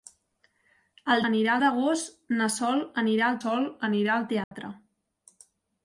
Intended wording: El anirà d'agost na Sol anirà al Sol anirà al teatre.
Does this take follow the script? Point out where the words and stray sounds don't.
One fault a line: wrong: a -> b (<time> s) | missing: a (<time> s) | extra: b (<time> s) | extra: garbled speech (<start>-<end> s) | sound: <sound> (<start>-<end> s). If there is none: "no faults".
sound: dropout (4.4-4.5 s)